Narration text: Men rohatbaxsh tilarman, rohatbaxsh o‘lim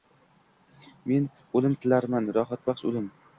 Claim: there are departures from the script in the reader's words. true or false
true